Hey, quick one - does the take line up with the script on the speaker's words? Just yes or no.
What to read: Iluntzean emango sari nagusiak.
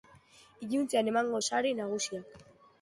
yes